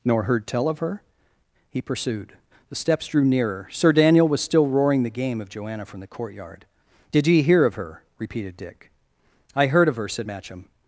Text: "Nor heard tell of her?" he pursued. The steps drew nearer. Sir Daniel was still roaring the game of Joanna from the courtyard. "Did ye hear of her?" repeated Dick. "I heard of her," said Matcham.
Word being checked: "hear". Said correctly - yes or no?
yes